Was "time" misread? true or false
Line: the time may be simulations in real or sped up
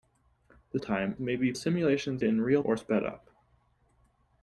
false